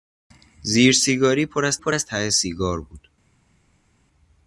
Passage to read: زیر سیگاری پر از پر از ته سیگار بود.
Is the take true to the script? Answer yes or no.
yes